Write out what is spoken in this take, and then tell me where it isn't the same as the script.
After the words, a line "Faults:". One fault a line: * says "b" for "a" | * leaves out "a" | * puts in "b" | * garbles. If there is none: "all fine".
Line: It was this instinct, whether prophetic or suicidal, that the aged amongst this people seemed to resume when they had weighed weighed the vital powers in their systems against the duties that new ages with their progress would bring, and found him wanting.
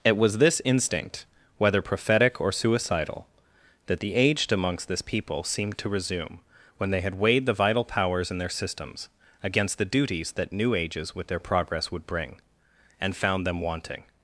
It was this instinct, whether prophetic or suicidal, that the aged amongst this people seemed to resume when they had weighed the vital powers in their systems against the duties that new ages with their progress would bring, and found them wanting.
Faults:
* leaves out "weighed"
* says "them" for "him"